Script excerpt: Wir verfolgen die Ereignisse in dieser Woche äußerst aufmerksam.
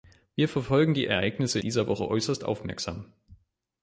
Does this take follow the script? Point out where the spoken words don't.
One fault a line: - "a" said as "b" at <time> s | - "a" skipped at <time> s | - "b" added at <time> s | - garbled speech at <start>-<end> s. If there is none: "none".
- "in" skipped at 1.6 s